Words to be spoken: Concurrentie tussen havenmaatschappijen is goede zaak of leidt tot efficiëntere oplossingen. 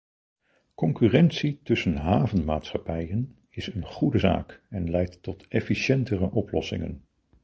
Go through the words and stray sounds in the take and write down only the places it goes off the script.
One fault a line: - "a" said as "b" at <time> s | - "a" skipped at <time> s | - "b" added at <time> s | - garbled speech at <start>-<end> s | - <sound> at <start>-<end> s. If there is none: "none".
- "een" added at 3.7 s
- "of" said as "en" at 4.7 s